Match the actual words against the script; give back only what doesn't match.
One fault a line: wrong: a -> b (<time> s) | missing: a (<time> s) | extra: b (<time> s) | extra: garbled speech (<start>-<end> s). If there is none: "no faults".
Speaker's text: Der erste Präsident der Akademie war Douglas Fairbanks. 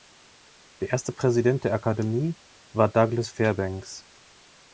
no faults